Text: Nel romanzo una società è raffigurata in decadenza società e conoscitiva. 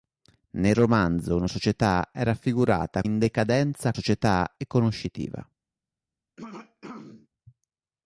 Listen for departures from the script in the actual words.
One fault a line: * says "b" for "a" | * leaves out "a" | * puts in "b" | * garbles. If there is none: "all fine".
all fine